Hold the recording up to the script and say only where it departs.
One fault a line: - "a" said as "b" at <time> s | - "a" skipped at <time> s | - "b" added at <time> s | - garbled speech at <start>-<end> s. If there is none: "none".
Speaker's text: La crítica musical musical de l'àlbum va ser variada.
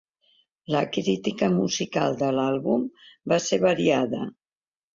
- "musical" skipped at 2.2 s